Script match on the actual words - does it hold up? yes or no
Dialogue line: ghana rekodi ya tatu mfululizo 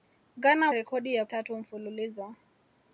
yes